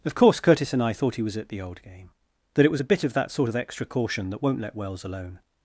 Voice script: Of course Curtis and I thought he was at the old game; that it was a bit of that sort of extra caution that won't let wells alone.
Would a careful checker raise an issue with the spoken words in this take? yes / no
no